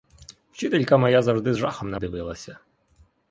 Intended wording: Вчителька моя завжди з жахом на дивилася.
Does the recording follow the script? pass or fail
pass